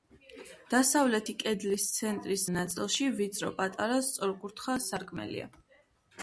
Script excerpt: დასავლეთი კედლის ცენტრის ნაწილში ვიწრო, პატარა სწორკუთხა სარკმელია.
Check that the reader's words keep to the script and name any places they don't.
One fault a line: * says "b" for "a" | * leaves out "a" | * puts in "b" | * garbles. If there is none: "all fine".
all fine